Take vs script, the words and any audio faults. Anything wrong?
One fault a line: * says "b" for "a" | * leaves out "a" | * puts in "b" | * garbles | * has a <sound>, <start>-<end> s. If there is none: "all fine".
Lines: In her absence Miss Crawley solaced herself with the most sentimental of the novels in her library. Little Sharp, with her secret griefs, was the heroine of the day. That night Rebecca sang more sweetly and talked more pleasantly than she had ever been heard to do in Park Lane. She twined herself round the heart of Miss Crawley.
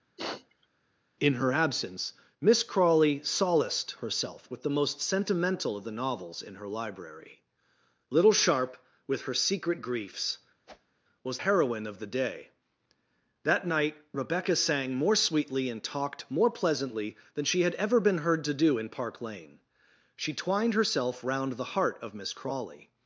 * has a sniff, 0.2-0.7 s
* has a whoosh, 10.7-11.0 s
* leaves out "the"